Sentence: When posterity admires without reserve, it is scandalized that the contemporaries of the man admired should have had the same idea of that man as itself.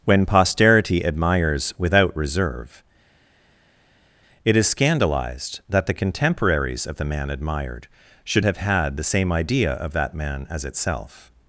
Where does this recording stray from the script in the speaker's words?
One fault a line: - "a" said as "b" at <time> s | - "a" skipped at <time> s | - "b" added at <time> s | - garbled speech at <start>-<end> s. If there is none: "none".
none